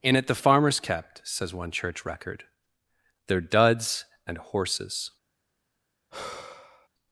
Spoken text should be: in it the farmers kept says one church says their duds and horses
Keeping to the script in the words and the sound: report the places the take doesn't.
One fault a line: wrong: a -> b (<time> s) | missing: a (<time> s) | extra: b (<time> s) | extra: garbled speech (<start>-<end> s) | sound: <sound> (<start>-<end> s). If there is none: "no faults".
wrong: says -> record (2.0 s)
sound: sigh (6.1-6.9 s)